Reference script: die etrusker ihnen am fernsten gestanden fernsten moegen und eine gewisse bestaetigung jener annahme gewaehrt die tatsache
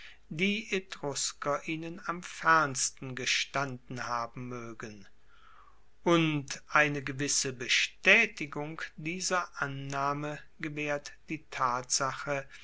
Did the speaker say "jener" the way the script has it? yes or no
no